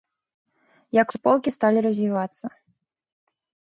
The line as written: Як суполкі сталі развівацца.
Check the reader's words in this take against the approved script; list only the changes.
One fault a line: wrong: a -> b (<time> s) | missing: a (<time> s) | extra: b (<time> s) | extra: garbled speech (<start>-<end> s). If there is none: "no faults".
no faults